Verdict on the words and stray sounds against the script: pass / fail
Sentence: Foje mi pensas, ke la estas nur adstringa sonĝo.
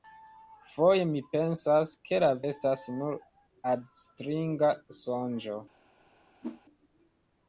fail